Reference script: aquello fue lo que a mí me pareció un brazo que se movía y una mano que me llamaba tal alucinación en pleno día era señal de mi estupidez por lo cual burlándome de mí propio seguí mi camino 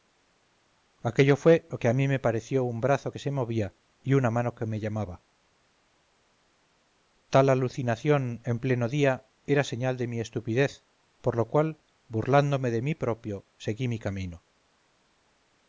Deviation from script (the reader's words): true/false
false